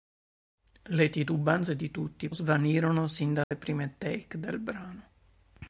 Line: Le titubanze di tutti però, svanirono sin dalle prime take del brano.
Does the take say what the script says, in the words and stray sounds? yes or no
no